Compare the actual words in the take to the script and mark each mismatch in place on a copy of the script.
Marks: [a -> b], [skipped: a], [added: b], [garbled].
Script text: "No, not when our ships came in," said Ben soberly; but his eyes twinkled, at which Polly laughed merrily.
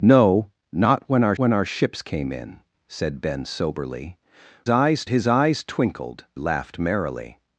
"No, not when our [added: when our] ships came in," said Ben soberly; [but -> eyes] his eyes twinkled, [skipped: at which Polly] laughed merrily.